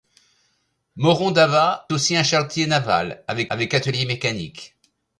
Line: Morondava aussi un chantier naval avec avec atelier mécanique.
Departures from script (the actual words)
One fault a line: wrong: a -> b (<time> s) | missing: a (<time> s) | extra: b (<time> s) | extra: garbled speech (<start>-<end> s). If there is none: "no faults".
no faults